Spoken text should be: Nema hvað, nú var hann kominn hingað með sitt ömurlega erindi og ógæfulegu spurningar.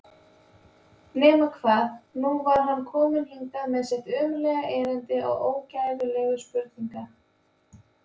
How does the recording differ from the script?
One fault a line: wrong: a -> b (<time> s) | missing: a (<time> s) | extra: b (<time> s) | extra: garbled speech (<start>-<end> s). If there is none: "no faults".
no faults